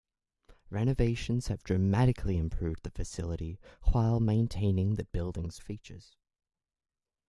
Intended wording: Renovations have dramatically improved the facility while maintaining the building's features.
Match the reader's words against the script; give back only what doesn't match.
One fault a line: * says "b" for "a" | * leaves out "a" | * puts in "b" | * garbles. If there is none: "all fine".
all fine